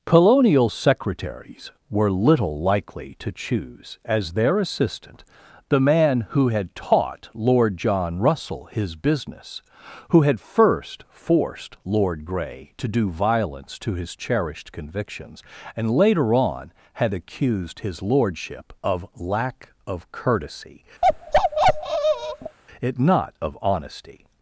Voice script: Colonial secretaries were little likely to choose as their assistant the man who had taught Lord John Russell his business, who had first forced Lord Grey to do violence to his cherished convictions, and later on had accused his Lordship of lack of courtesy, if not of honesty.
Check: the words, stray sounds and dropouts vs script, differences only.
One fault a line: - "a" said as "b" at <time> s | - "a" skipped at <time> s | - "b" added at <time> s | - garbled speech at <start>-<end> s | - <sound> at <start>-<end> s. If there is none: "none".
- bark at 21.0-22.6 s
- "if" said as "it" at 22.8 s